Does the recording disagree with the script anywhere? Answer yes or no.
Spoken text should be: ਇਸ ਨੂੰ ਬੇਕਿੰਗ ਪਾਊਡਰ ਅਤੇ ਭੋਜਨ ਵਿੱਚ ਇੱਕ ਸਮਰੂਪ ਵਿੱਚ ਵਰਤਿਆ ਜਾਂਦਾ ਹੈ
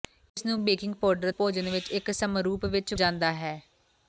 yes